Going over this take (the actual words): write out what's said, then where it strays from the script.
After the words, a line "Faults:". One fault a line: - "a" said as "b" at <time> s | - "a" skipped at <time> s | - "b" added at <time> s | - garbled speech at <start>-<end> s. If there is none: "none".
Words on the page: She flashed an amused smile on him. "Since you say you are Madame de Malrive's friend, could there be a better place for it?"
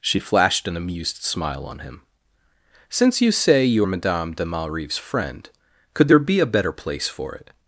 She flashed an amused smile on him. "Since you say you Madame de Malrive's friend, could there be a better place for it?"
Faults:
- "are" skipped at 3.9 s